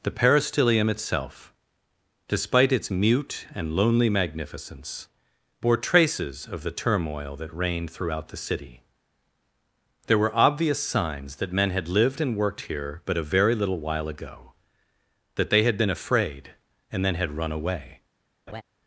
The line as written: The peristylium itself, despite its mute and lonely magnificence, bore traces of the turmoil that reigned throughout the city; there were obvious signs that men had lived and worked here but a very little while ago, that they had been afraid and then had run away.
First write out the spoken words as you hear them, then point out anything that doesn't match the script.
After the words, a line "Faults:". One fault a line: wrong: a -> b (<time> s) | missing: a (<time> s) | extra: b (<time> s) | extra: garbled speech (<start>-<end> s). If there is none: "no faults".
The peristylium itself, despite its mute and lonely magnificence, bore traces of the turmoil that reigned throughout the city; there were obvious signs that men had lived and worked here but a very little while ago, that they had been afraid and then had run away.
Faults:
no faults